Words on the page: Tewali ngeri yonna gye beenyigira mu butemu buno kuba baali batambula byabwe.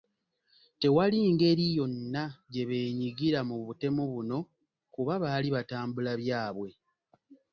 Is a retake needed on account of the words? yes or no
no